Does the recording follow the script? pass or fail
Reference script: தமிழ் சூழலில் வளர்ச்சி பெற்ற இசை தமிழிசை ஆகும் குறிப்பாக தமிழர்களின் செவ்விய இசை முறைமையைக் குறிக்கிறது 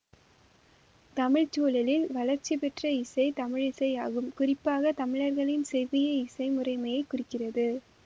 pass